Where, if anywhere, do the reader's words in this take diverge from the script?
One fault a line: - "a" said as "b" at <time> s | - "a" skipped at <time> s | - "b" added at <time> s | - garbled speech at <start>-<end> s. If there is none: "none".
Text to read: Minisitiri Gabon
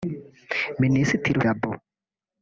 none